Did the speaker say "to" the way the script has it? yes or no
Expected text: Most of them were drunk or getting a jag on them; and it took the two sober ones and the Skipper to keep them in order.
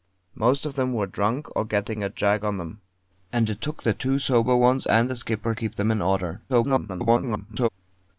no